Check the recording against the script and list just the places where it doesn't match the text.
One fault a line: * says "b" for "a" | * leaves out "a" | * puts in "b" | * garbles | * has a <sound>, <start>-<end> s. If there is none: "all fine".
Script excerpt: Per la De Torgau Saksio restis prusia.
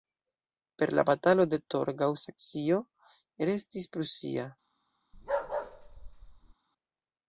* puts in "Batalo"
* has a bark, 5.1-6.5 s